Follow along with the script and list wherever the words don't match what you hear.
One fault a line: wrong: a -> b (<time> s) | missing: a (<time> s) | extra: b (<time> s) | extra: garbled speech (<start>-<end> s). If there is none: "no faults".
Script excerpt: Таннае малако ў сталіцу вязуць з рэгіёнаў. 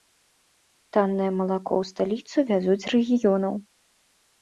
no faults